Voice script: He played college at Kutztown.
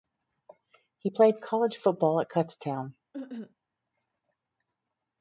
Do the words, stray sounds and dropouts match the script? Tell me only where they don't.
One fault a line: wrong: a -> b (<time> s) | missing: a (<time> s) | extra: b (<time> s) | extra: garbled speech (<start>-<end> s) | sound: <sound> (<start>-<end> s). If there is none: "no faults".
extra: football (1.7 s)
sound: cough (3.1-3.5 s)